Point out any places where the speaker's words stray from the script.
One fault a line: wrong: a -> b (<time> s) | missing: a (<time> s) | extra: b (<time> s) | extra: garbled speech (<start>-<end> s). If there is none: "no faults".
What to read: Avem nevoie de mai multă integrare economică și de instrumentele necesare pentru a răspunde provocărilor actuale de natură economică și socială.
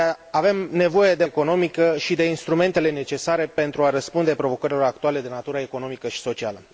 missing: mai multă integrare (1.2 s)